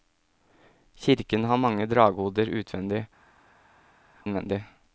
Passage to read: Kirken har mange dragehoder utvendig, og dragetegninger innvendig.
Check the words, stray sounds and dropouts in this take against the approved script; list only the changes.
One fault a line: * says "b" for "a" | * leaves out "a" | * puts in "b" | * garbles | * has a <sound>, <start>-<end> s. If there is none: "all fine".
* leaves out "og dragetegninger"